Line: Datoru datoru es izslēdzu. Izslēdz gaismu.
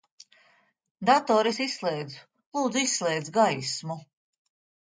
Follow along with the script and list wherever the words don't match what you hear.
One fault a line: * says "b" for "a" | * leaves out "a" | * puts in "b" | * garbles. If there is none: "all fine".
* leaves out "datoru"
* puts in "Lūdzu"